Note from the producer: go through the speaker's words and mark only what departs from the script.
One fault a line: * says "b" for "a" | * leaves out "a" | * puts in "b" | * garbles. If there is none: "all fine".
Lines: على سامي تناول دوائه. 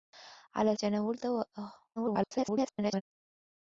* leaves out "سامي"
* garbles